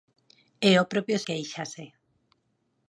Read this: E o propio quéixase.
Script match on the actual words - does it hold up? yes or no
yes